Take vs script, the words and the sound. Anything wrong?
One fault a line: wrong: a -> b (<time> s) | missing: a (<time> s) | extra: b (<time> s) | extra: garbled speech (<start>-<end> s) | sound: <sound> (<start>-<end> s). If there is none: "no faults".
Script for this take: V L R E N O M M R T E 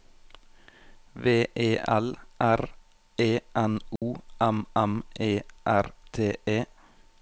extra: E (1.5 s)
sound: dropout (4.0-4.0 s)
extra: E (5.2 s)